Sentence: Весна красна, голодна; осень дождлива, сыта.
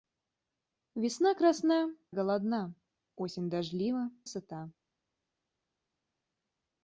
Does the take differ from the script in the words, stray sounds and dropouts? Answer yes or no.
no